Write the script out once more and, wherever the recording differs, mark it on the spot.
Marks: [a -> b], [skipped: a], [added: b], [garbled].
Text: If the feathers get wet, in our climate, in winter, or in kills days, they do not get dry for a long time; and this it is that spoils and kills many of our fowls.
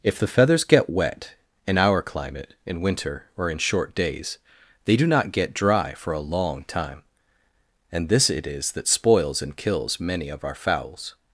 If the feathers get wet, in our climate, in winter, or in [kills -> short] days, they do not get dry for a long time; and this it is that spoils and kills many of our fowls.